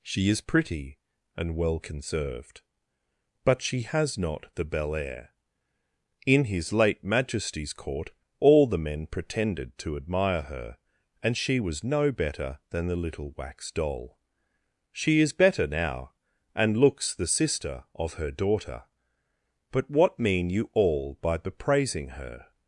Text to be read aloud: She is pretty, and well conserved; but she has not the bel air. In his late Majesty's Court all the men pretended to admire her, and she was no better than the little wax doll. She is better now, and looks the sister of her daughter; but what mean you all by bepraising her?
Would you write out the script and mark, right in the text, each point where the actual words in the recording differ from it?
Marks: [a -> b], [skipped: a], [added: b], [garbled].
She is pretty, and well conserved; but she has not the bel air. In his late Majesty's Court all the men pretended to admire her, and she was no better than the little wax doll. She is better now, and looks the sister of her daughter; but what mean you all by bepraising her?